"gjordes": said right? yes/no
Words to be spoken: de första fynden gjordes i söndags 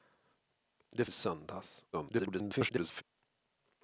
no